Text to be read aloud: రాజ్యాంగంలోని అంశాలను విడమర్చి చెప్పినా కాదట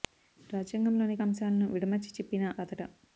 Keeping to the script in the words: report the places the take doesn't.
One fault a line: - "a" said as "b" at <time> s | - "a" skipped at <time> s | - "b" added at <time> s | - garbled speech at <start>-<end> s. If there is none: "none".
none